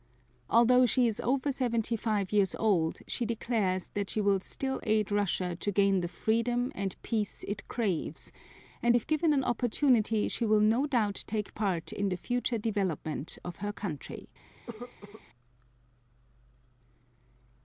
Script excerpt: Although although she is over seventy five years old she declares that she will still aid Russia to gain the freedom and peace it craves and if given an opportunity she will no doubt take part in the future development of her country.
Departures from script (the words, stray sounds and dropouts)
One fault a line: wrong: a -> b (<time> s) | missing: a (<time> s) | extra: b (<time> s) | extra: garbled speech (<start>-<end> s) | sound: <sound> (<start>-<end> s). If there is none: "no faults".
missing: although (0.9 s)
sound: cough (14.7-15.2 s)